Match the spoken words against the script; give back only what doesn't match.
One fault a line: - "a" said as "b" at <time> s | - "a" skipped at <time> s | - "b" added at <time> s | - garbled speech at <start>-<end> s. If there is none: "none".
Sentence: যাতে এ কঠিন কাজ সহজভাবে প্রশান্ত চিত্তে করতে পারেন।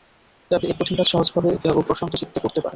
- "ও" added at 1.7 s